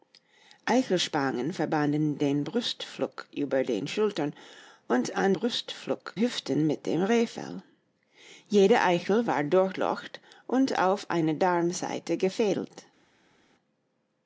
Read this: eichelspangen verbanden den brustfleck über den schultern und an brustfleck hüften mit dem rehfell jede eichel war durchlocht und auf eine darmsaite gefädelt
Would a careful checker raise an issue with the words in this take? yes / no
no